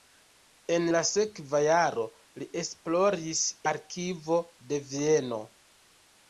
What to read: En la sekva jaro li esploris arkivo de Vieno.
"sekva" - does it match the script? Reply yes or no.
yes